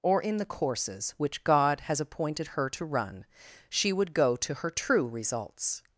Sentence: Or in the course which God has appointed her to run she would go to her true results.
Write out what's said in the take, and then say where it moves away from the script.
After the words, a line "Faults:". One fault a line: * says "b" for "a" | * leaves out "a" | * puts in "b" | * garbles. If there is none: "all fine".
Or in the courses which God has appointed her to run she would go to her true results.
Faults:
* says "courses" for "course"